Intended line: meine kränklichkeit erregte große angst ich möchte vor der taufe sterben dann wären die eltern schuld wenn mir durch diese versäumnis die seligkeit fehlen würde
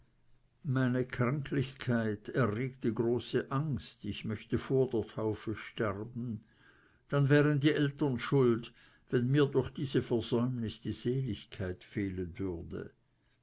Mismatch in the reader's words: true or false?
false